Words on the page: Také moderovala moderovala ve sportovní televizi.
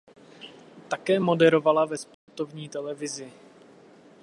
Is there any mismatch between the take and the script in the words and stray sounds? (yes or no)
yes